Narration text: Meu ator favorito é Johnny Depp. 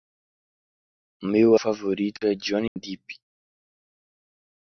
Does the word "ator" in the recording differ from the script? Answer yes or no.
yes